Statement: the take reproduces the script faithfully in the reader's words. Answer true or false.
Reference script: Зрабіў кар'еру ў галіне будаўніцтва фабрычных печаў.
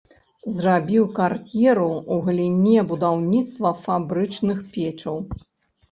true